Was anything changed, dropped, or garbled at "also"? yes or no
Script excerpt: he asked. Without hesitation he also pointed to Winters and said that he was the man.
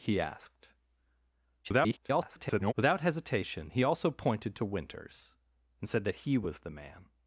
no